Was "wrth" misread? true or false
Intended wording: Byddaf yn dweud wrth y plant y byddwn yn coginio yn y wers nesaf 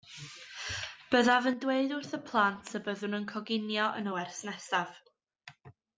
false